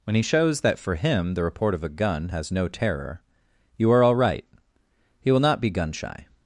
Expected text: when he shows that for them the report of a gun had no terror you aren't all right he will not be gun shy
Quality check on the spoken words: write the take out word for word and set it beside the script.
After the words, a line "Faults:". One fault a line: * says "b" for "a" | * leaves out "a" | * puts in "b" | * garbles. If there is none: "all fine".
when he shows that for him the report of a gun has no terror you are all right he will not be gun shy
Faults:
* says "him" for "them"
* says "has" for "had"
* says "are" for "aren't"